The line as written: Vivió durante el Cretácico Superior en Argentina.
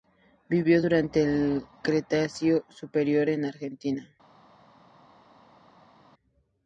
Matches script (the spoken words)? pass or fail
pass